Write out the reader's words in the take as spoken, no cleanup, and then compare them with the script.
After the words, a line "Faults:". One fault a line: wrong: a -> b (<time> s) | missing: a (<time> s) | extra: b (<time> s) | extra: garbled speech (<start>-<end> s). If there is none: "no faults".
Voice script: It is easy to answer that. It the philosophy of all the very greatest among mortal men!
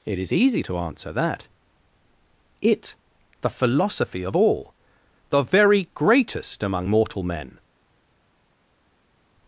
It is easy to answer that. It the philosophy of all the very greatest among mortal men!
Faults:
no faults